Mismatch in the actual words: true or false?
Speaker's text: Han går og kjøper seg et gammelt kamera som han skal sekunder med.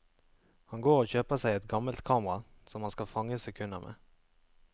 true